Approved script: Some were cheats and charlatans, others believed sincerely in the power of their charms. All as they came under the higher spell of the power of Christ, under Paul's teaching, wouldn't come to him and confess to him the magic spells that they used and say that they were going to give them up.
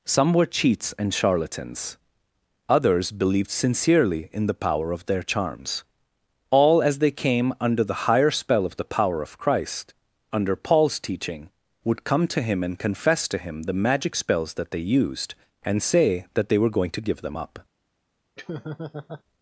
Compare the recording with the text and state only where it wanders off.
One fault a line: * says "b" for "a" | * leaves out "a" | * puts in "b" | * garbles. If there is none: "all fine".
* says "would" for "wouldn't"